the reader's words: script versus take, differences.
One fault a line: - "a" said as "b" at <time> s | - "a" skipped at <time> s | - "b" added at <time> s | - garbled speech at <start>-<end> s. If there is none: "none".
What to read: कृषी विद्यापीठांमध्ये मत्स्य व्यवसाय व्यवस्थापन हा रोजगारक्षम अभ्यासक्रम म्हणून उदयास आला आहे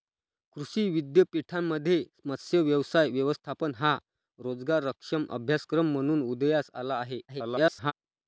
- garbled speech at 7.3-7.9 s